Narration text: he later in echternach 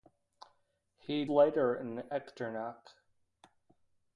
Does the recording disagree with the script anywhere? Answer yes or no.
no